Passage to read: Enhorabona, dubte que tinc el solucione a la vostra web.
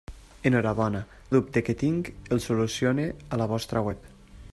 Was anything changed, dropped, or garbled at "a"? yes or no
no